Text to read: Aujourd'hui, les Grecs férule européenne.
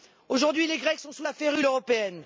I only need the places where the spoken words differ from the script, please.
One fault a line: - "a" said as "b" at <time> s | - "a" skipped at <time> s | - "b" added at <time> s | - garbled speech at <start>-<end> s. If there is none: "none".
- "sont sous la" added at 1.0 s